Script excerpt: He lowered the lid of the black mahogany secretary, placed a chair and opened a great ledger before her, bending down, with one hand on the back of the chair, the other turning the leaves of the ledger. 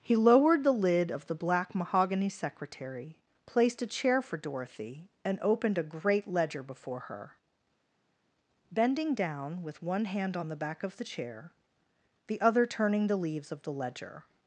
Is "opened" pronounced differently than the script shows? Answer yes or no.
no